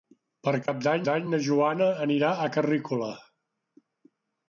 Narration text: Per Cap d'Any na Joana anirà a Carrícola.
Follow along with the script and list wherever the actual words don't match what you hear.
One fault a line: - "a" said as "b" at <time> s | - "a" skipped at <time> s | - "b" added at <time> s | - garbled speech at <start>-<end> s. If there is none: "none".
- "d'Any" added at 1.1 s